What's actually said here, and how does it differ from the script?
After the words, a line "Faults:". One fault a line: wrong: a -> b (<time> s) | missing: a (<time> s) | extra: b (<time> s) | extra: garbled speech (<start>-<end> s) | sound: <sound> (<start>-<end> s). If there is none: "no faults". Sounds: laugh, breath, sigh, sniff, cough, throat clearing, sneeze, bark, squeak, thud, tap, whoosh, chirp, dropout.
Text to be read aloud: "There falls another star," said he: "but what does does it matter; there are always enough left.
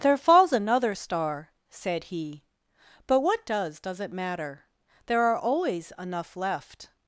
"There falls another star," said he: "but what does does it matter; there are always enough left.
Faults:
no faults